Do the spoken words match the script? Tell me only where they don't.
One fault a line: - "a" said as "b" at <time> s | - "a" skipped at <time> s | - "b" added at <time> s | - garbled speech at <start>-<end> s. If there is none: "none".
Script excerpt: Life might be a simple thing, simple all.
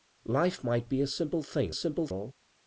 none